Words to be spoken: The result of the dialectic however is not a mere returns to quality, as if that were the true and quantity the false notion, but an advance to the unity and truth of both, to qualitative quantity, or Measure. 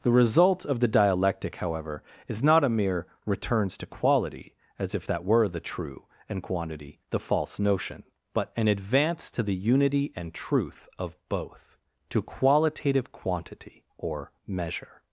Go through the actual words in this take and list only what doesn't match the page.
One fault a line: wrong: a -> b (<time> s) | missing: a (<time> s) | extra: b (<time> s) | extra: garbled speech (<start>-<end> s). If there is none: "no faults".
no faults